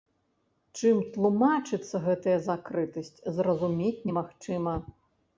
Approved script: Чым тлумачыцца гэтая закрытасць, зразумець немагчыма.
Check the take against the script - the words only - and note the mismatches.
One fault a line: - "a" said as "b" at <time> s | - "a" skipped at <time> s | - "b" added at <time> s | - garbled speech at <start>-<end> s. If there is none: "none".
none